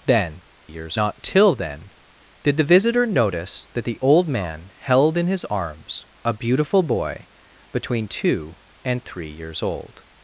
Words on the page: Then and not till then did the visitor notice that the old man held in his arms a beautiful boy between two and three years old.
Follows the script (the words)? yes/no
no